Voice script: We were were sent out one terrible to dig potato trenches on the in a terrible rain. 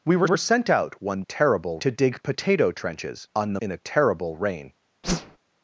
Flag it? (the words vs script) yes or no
no